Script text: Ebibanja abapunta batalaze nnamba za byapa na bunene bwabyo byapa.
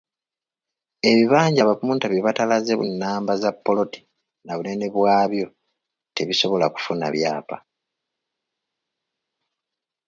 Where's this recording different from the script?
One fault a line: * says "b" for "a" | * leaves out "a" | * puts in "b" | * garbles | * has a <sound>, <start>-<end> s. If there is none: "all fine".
* puts in "bye"
* says "ppoloti" for "byapa"
* puts in "tebisobola kufuna"